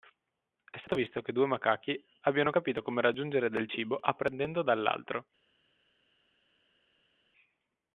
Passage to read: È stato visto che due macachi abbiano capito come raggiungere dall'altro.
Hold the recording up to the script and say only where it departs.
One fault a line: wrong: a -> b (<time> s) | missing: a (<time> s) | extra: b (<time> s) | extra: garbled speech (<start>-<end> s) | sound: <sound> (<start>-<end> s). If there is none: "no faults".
extra: del cibo apprendendo (3.5 s)